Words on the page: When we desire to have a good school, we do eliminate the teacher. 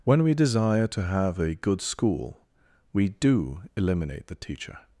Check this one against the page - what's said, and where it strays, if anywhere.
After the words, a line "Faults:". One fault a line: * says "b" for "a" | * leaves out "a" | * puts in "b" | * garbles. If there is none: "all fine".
When we desire to have a good school, we do eliminate the teacher.
Faults:
all fine